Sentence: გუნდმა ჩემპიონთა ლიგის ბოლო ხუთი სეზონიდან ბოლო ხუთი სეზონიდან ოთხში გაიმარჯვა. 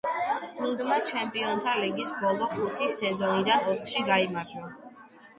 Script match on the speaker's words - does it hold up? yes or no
no